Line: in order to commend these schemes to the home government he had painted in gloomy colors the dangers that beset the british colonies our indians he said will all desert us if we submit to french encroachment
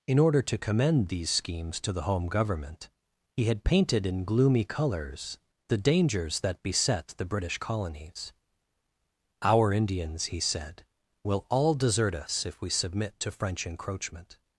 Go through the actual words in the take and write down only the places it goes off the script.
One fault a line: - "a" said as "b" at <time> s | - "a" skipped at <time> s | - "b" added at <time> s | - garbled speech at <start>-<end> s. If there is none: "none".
none